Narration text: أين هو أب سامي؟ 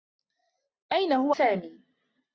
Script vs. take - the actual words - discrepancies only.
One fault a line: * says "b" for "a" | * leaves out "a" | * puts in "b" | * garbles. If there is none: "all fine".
* leaves out "أب"